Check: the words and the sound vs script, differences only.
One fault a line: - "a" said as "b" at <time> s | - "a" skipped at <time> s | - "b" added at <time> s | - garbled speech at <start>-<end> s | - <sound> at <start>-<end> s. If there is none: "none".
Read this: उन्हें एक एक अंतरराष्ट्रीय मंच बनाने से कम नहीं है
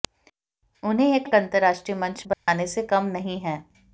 - dropout at 2.3-2.5 s